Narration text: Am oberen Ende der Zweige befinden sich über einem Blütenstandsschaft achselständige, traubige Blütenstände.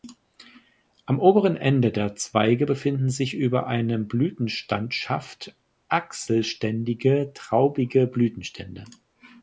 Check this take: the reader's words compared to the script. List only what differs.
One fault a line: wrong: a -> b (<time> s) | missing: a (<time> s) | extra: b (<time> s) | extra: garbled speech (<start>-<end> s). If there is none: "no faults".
no faults